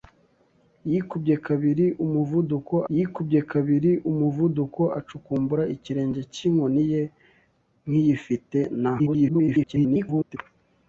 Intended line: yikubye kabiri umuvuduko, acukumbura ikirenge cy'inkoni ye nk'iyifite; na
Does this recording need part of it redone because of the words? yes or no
yes